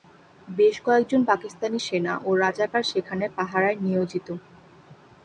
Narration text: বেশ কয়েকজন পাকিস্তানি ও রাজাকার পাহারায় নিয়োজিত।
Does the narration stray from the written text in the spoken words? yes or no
yes